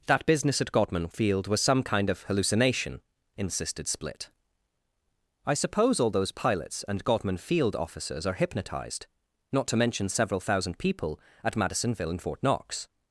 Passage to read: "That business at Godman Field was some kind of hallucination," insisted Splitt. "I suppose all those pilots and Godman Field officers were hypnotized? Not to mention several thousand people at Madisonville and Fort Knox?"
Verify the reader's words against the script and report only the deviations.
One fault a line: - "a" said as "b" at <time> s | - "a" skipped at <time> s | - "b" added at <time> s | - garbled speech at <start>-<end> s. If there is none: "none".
- "were" said as "are" at 8.2 s